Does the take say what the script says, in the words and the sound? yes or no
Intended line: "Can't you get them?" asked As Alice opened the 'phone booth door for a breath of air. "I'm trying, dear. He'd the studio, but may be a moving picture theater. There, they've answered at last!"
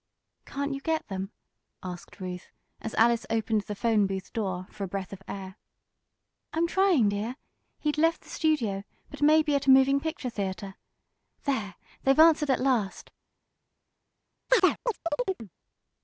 no